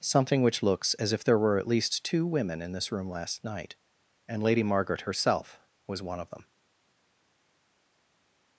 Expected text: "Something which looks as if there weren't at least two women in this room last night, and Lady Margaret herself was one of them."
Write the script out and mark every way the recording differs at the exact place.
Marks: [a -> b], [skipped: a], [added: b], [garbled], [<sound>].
"Something which looks as if there [weren't -> were] at least two women in this room last night, and Lady Margaret herself was one of them."